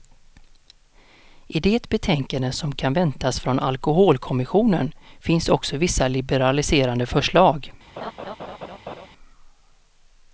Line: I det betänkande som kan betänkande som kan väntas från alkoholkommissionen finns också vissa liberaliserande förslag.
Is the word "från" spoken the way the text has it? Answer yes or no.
yes